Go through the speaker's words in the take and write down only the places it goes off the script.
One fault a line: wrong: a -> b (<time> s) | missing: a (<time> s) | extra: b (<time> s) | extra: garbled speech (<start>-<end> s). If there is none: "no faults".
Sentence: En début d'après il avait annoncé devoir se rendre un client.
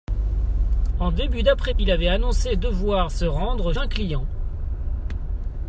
no faults